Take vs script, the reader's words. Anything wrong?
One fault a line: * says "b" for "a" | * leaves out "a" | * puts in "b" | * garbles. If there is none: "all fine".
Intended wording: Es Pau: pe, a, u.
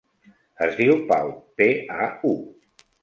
* puts in "diu"